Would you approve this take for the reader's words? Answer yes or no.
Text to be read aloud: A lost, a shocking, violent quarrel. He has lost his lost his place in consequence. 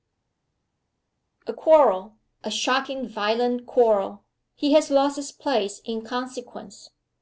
no